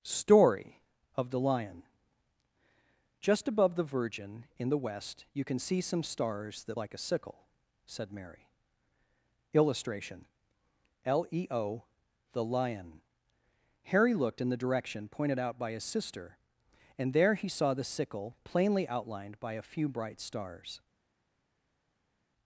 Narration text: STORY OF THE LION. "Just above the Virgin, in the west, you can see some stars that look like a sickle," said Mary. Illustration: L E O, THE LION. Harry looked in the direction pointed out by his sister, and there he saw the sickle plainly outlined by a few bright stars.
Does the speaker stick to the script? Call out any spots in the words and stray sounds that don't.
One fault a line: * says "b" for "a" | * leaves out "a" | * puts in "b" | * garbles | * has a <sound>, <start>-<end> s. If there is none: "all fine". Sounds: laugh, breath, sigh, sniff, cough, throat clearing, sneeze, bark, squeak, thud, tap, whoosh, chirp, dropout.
* leaves out "look"